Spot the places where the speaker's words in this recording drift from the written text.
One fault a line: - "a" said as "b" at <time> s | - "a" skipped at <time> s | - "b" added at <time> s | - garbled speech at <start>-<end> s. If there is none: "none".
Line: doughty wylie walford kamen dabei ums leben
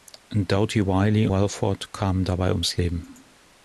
none